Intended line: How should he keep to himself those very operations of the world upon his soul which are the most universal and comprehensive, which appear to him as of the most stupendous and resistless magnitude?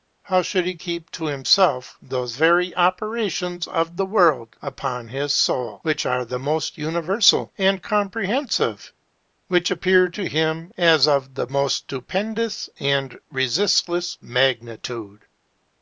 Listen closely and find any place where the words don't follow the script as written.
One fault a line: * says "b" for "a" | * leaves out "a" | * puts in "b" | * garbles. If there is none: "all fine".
all fine